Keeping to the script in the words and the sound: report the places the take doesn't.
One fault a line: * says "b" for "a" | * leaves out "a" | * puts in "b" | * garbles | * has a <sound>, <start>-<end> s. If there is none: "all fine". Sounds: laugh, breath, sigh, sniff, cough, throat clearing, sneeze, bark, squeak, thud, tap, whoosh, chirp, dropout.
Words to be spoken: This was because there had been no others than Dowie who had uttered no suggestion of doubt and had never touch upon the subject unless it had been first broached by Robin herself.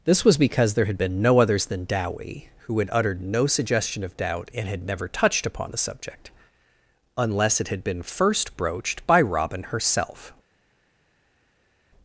* says "touched" for "touch"